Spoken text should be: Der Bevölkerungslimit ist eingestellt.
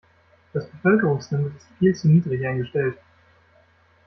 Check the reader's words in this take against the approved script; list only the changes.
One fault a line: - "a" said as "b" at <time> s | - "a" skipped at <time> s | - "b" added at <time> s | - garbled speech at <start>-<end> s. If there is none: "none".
- "Der" said as "Das" at 0.5 s
- "viel zu niedrig" added at 1.8 s